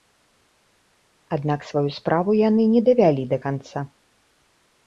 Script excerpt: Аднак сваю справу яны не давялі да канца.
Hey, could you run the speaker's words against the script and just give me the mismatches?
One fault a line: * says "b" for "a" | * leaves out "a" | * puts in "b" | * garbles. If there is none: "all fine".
all fine